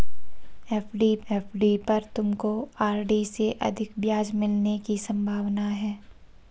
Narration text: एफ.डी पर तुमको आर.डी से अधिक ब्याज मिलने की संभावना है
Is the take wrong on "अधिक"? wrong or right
right